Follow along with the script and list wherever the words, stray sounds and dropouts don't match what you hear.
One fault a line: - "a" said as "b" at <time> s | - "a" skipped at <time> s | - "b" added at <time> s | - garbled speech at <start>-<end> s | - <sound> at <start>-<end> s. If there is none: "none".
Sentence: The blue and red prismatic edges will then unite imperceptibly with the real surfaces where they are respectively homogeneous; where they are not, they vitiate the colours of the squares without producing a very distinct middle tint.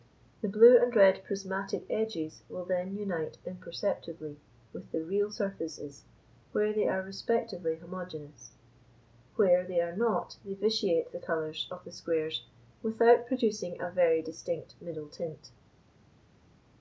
none